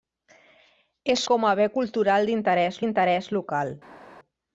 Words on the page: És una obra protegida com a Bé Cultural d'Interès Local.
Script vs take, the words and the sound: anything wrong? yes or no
yes